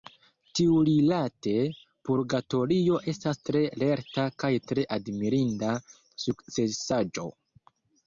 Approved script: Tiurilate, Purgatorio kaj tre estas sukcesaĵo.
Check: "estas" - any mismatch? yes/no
yes